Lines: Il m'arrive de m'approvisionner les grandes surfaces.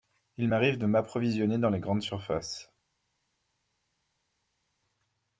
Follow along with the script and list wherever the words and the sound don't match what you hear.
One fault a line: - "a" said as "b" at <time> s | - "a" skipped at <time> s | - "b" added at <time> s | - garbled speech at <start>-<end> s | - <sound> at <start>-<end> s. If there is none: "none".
- "dans" added at 1.6 s